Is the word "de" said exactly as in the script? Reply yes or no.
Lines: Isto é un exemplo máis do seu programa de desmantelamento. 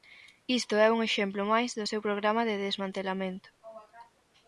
yes